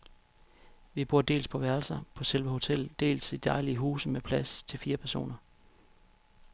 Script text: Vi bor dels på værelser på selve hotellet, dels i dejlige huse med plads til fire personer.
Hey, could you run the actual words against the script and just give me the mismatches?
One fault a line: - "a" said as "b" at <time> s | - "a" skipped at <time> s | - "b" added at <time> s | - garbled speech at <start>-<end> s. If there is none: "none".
none